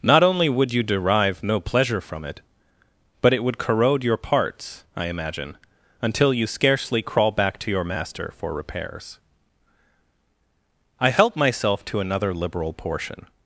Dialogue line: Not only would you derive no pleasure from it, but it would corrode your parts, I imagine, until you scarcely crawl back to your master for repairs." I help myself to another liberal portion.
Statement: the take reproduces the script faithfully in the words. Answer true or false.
true